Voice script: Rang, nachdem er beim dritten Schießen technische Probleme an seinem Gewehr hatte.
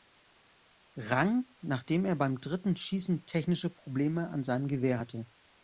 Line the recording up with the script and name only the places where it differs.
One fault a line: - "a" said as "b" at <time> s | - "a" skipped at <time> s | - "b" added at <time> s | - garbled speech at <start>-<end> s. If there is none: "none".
none